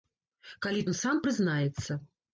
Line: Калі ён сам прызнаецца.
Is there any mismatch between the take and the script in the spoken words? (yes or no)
no